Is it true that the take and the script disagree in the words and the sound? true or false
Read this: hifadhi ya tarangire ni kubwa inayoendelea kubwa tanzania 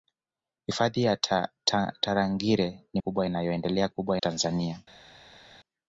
false